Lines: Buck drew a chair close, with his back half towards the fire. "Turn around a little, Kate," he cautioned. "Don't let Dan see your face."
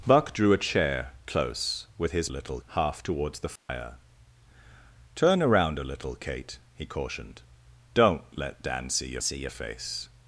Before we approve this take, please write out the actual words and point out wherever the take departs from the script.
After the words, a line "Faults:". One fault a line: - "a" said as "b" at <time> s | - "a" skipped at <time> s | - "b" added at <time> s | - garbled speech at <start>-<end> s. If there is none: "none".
Buck drew a chair close, with his little half towards the fire. "Turn around a little, Kate," he cautioned. "Don't let Dan see your see your face."
Faults:
- "back" said as "little" at 2.3 s
- "see your" added at 9.2 s